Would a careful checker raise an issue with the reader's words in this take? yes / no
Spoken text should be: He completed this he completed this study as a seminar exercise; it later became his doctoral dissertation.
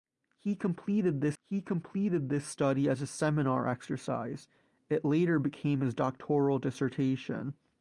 no